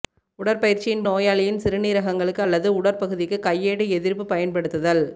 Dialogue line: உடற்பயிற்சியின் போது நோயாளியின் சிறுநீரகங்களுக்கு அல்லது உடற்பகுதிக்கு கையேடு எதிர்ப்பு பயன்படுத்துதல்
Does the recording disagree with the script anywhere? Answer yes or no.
yes